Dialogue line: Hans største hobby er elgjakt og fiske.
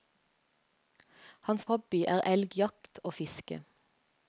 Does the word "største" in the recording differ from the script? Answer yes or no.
yes